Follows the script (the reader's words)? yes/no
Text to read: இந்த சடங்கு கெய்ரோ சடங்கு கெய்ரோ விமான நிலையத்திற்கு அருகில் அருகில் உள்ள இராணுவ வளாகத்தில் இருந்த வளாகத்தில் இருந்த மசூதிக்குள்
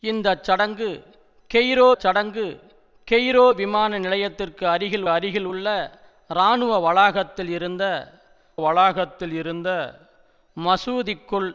yes